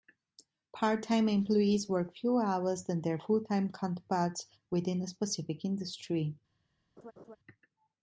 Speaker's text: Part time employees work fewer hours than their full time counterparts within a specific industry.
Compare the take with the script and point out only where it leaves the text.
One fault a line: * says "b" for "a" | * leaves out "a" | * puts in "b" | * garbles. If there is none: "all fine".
all fine